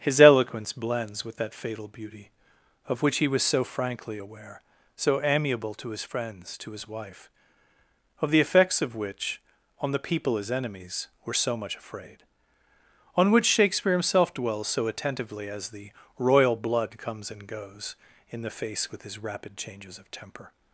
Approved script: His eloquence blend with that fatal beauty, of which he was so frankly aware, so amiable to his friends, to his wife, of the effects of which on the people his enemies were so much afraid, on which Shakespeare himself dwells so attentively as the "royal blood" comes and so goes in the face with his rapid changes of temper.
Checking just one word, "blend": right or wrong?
wrong